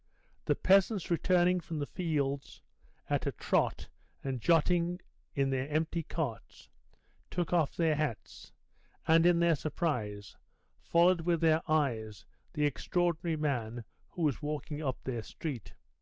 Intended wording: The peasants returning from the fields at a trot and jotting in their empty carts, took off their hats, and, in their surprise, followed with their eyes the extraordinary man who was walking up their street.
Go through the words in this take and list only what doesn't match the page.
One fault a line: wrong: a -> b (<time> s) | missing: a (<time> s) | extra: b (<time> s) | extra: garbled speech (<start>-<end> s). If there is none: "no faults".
no faults